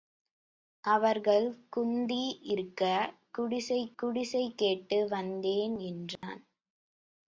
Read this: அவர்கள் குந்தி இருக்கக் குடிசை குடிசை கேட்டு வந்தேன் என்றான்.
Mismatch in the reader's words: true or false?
false